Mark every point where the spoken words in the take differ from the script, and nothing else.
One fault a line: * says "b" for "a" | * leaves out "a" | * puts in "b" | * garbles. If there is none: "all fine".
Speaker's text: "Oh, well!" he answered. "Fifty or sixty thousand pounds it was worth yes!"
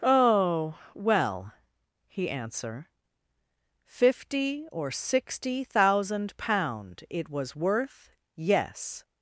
* says "answer" for "answered"
* says "pound" for "pounds"